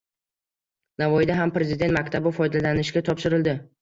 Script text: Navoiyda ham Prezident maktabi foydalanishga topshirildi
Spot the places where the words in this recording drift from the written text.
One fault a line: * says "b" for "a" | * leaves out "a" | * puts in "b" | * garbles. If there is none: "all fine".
all fine